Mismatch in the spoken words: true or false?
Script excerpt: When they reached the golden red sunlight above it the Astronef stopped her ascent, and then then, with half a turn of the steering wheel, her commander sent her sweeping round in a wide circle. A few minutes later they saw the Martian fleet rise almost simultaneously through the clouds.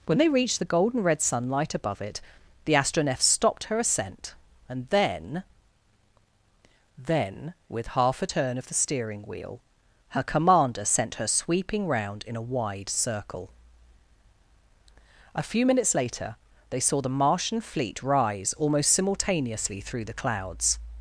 false